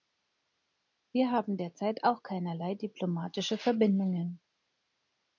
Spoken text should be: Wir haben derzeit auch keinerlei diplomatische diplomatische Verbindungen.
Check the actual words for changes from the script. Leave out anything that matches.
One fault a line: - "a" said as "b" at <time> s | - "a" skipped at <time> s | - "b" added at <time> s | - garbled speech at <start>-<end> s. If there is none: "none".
- "diplomatische" skipped at 3.6 s